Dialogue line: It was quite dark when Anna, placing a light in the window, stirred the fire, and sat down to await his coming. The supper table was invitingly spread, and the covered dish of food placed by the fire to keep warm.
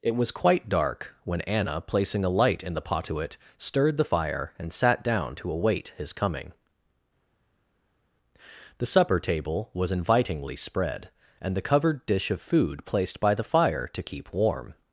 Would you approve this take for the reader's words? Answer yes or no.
no